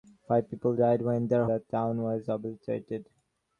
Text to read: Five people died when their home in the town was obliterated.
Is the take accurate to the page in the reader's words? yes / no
no